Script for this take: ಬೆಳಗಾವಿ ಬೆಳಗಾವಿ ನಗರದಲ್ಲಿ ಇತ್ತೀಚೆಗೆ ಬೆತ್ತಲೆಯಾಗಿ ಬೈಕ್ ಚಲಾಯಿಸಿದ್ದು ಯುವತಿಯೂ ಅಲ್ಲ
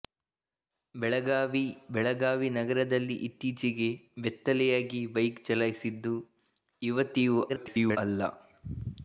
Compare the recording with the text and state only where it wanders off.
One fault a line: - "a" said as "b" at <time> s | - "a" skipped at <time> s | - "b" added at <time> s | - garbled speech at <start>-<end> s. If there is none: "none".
- garbled speech at 7.5-8.0 s